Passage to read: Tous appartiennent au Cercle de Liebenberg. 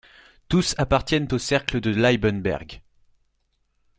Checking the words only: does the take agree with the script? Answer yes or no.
yes